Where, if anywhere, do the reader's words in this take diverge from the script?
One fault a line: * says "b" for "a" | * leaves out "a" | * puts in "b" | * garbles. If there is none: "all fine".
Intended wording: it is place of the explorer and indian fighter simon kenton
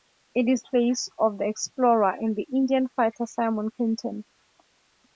all fine